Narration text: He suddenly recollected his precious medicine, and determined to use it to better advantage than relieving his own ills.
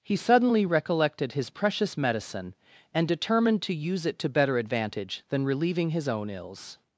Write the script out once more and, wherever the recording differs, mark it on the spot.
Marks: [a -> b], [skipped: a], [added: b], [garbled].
He suddenly recollected his precious medicine, and determined to use it to better advantage than relieving his own ills.